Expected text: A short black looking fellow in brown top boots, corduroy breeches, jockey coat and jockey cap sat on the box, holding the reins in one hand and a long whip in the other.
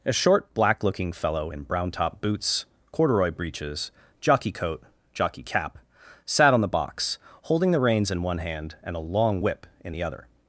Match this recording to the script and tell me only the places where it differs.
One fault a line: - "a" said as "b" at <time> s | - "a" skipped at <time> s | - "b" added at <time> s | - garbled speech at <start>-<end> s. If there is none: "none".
- "and" skipped at 4.8 s